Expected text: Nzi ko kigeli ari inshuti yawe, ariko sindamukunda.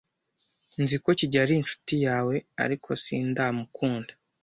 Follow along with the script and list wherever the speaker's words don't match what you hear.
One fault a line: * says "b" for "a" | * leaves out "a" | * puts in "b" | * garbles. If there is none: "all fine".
all fine